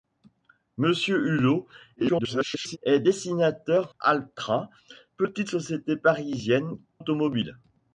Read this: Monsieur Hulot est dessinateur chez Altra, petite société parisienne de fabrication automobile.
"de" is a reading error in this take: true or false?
true